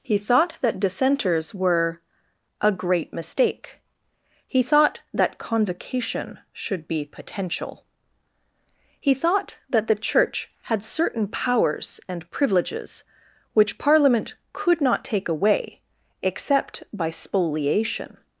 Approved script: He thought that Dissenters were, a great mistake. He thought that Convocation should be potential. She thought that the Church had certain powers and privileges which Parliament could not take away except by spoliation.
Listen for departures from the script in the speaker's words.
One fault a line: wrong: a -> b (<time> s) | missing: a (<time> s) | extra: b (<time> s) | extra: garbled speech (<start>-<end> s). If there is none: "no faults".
wrong: She -> He (9.0 s)